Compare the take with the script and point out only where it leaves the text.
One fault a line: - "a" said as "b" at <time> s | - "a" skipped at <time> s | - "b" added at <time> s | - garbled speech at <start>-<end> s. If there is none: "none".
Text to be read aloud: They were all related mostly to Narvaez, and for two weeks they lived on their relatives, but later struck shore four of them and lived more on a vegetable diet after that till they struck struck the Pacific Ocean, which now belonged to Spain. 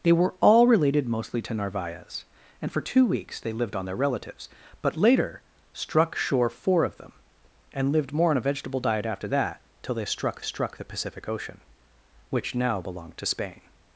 none